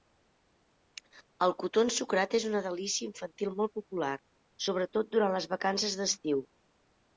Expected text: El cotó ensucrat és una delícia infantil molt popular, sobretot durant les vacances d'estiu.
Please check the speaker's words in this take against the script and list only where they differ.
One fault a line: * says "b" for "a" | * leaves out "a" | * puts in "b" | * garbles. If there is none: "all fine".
all fine